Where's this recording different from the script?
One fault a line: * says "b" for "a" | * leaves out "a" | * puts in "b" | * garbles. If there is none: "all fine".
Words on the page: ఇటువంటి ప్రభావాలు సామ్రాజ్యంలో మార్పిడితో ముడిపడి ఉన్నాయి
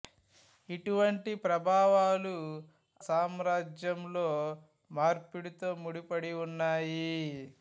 all fine